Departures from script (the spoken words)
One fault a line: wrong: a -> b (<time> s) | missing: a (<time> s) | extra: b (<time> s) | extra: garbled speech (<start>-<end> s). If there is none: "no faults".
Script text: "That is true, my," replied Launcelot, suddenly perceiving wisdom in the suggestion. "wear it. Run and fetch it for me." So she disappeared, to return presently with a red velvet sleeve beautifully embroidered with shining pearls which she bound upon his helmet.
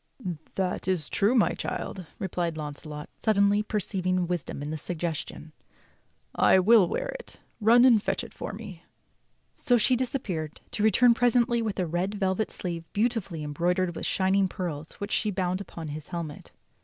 extra: child (1.5 s)
extra: I will (6.3 s)